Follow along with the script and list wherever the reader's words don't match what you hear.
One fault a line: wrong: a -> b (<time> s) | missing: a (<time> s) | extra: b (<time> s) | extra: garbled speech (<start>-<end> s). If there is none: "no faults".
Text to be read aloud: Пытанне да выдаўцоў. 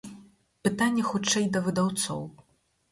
extra: хутчэй (1.1 s)